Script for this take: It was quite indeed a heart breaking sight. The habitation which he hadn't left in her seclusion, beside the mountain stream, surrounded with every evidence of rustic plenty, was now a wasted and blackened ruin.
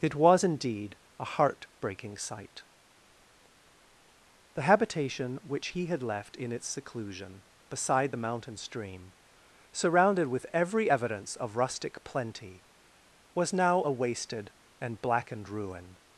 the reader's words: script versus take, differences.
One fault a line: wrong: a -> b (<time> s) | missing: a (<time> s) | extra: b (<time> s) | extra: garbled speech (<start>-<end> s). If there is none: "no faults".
missing: quite (0.4 s)
wrong: hadn't -> had (5.8 s)
wrong: her -> its (6.5 s)